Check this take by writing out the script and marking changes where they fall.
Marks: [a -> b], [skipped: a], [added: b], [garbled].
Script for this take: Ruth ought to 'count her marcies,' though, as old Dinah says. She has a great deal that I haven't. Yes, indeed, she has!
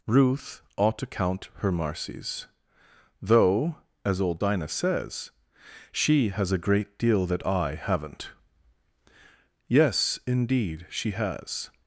Ruth ought to 'count her marcies,' though, as old Dinah says. She has a great deal that I haven't. Yes, indeed, she has!